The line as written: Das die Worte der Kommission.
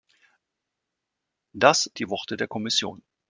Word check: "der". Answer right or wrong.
right